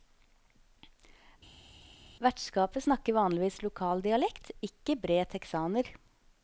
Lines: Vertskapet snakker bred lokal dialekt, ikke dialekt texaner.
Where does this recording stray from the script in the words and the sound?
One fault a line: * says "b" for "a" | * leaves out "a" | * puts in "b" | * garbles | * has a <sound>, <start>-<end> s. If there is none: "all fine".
* says "vanligvis" for "bred"
* says "bred" for "dialekt"